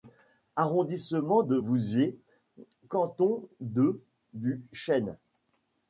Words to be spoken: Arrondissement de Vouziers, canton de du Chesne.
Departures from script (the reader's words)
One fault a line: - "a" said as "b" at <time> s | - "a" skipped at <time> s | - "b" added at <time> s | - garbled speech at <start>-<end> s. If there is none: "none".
none